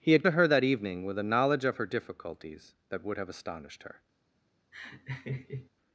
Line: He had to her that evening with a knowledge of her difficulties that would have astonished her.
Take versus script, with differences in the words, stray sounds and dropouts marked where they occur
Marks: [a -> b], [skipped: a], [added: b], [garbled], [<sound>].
He had to her that evening with a knowledge of her difficulties that would have astonished her. [laugh]